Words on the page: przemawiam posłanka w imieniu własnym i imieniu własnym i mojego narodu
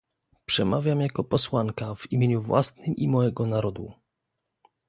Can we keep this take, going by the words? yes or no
no